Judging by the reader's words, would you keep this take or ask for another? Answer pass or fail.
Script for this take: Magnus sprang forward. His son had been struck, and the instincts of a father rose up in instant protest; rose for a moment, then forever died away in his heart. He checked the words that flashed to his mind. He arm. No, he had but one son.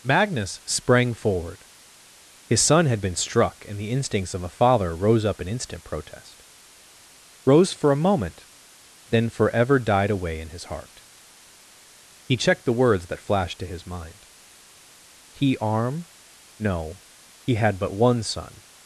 pass